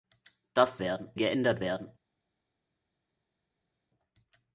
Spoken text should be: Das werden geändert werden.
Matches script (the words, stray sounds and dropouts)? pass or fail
pass